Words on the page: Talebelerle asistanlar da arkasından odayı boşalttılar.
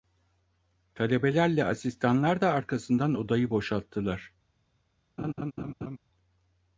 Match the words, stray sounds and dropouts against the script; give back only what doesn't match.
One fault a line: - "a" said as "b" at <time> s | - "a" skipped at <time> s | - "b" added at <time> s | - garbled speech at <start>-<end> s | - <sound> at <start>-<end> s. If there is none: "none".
- laugh at 5.2-6.0 s